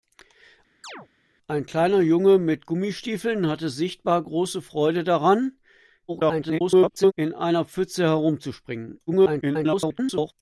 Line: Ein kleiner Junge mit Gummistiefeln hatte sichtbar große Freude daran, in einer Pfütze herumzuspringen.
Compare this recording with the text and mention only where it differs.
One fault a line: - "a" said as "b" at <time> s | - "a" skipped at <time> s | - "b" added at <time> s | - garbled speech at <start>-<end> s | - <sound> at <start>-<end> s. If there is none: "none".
- chirp at 0.8-1.1 s
- garbled speech at 6.1-7.1 s
- garbled speech at 9.1-10.3 s